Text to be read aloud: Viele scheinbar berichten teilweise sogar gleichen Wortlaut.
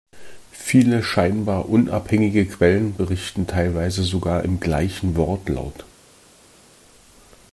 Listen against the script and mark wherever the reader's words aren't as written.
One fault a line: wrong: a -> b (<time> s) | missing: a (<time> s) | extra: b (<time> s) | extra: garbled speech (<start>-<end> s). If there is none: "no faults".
extra: unabhängige Quellen (1.7 s)
extra: im (4.4 s)